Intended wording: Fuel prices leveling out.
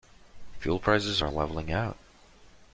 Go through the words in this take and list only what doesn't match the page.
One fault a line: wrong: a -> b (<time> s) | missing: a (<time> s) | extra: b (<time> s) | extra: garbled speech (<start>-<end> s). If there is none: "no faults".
extra: are (1.2 s)